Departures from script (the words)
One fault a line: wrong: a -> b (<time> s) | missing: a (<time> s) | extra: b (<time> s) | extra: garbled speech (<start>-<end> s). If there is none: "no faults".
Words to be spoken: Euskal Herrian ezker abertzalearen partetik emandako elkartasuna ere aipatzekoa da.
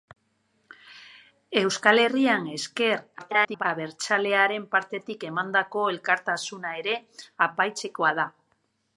extra: garbled speech (3.2-3.6 s)